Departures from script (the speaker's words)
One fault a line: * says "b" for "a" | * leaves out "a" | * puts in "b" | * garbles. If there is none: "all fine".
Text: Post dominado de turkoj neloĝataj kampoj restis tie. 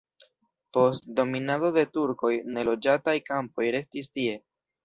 all fine